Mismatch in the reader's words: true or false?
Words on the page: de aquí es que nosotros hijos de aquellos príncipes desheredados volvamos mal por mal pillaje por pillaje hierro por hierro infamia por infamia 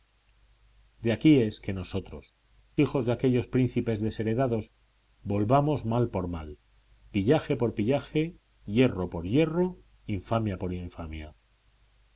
false